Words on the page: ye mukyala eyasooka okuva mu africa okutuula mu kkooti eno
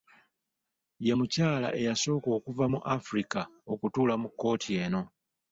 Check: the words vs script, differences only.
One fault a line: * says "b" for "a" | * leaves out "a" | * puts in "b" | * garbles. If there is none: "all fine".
all fine